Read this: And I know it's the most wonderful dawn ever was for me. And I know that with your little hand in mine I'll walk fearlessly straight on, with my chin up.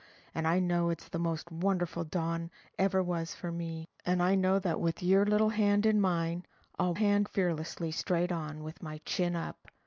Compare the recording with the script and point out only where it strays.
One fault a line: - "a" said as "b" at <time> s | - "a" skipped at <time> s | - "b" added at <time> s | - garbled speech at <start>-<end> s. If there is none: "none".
- "walk" said as "hand" at 6.9 s